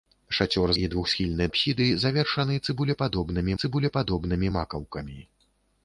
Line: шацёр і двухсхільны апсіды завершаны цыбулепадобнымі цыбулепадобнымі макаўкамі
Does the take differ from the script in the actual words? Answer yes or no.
no